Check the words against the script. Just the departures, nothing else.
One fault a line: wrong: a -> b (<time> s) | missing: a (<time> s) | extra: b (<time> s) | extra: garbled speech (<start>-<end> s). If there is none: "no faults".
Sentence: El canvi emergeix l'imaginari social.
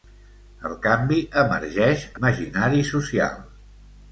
no faults